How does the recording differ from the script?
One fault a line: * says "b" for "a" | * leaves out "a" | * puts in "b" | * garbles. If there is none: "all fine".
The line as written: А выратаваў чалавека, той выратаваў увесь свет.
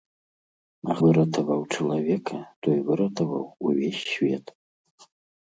all fine